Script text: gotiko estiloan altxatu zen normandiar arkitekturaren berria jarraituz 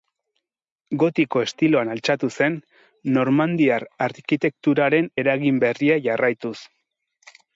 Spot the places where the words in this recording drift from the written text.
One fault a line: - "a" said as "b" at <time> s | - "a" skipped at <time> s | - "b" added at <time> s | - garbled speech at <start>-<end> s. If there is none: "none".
- "eragin" added at 5.2 s